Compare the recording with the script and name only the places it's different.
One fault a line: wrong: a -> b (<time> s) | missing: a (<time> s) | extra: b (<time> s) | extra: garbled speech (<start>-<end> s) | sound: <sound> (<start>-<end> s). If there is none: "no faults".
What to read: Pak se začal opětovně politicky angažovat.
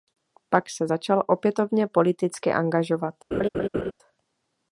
sound: laugh (3.3-3.9 s)